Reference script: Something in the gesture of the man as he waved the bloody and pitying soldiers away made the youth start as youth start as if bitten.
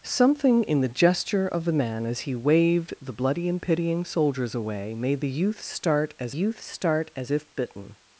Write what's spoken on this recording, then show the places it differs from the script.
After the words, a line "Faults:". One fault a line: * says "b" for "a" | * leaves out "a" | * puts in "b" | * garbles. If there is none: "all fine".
Something in the gesture of the man as he waved the bloody and pitying soldiers away made the youth start as youth start as if bitten.
Faults:
all fine